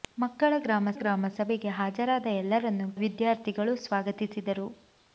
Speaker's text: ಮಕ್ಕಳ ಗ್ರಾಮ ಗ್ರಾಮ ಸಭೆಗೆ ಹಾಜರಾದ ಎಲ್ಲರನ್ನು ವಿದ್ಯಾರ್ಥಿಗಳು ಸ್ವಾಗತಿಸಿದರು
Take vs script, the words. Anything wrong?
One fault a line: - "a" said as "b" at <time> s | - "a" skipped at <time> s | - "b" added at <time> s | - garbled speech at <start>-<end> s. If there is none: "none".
none